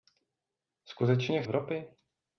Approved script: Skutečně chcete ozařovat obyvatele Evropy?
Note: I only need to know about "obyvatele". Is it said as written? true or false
false